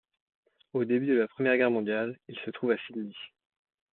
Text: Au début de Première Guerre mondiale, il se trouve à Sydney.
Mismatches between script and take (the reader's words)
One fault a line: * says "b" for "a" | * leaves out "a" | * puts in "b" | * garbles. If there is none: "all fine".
* puts in "la"